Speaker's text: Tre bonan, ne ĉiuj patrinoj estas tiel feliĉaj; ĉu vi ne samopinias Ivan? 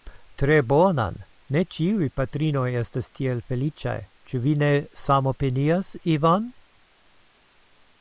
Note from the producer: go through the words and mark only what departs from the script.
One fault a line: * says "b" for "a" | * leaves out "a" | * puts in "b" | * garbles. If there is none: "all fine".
all fine